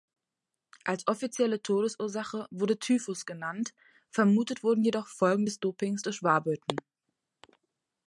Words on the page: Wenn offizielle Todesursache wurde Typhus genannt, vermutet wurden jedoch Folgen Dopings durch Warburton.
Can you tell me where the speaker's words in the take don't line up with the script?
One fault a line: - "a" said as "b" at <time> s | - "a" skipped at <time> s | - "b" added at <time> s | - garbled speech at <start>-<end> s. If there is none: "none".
- "Wenn" said as "Als" at 0.8 s
- "des" added at 5.4 s